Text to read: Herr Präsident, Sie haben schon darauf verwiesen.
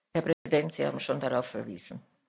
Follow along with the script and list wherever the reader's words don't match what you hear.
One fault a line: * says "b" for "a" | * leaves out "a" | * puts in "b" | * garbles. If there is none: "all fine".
all fine